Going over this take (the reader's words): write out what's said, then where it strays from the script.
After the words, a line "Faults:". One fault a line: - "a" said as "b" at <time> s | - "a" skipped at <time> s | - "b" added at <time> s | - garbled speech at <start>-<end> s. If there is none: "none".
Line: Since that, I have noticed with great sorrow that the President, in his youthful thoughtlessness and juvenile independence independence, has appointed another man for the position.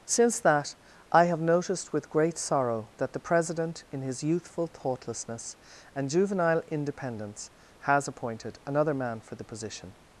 Since that, I have noticed with great sorrow that the President, in his youthful thoughtlessness and juvenile independence, has appointed another man for the position.
Faults:
- "independence" skipped at 7.5 s